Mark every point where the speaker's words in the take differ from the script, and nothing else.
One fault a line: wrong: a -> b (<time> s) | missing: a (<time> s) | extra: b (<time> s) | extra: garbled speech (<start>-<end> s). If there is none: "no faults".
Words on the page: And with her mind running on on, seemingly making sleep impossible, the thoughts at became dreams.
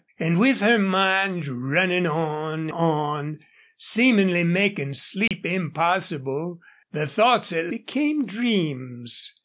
no faults